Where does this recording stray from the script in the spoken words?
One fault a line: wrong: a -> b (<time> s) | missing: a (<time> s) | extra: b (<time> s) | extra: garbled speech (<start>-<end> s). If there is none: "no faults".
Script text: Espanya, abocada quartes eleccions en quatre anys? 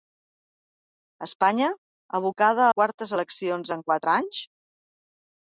no faults